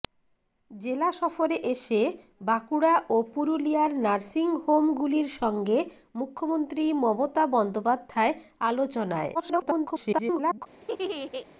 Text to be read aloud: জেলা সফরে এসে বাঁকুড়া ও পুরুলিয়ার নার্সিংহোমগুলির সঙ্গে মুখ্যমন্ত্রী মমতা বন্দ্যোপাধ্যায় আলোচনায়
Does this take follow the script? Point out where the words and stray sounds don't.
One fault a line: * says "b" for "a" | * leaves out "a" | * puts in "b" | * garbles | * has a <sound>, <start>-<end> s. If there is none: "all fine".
* garbles
* has a laugh, 10.8-11.5 s